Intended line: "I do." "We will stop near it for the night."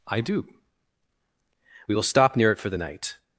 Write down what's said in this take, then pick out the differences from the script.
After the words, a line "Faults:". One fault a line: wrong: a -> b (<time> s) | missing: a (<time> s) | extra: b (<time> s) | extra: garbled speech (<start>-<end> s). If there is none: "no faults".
"I do." "We will stop near it for the night."
Faults:
no faults